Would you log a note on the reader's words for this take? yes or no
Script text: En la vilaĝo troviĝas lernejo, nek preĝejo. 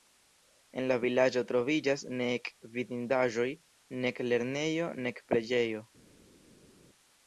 yes